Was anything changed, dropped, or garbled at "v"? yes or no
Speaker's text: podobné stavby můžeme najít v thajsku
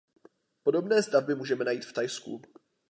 no